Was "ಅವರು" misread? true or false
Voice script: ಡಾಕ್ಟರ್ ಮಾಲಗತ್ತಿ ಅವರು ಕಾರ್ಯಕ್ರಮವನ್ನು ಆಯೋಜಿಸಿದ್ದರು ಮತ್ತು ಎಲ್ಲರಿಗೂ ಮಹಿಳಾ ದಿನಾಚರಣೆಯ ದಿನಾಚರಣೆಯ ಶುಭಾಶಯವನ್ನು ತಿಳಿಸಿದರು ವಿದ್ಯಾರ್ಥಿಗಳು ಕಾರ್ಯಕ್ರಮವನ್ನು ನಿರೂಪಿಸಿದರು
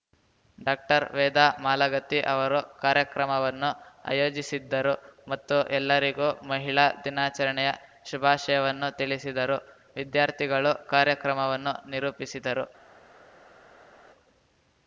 false